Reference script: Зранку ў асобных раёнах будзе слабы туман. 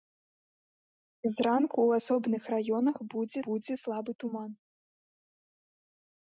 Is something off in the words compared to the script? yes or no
yes